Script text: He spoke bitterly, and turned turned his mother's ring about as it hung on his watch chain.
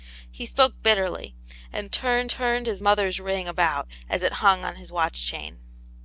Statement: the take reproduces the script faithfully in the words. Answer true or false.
true